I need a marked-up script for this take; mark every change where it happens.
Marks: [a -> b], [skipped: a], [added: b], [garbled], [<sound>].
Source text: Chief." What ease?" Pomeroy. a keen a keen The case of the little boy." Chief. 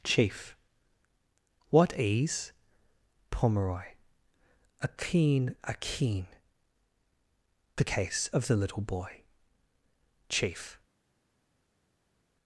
Chief." What ease?" Pomeroy. a keen a keen The case of the little boy." Chief.